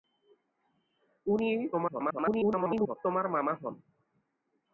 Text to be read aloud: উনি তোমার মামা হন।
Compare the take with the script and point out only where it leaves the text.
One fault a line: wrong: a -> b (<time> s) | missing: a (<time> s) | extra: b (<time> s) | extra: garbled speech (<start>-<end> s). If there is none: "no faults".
extra: garbled speech (1.7-3.0 s)